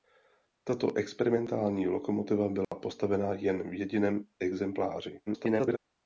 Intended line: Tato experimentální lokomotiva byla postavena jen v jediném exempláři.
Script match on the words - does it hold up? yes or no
no